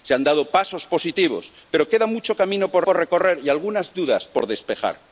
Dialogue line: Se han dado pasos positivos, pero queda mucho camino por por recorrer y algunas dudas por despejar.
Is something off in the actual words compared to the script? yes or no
no